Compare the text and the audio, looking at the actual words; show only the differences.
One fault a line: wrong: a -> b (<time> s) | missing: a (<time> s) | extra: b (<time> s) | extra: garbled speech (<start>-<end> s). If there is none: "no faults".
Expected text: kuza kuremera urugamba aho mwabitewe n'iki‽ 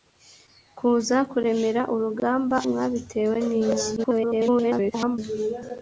missing: aho (2.6 s)
extra: garbled speech (4.0-5.2 s)